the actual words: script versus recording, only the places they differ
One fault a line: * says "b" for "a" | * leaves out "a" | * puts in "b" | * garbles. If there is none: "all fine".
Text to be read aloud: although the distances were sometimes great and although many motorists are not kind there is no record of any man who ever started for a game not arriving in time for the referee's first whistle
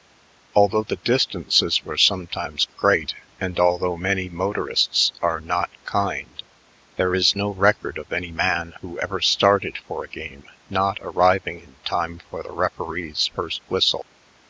all fine